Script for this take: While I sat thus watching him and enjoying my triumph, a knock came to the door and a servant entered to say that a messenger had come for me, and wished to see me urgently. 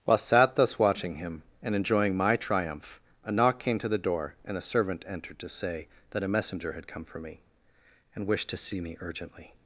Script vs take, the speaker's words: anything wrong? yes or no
yes